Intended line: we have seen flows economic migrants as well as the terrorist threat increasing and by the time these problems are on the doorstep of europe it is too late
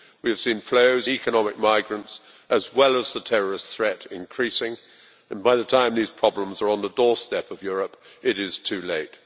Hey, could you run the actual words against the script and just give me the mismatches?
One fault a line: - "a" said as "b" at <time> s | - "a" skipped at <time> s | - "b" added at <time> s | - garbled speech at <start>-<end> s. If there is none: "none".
none